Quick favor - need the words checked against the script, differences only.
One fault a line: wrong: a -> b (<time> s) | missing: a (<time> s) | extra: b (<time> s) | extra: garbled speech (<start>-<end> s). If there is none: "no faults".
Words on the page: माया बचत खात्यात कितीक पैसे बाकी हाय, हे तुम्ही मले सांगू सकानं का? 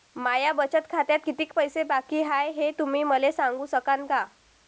no faults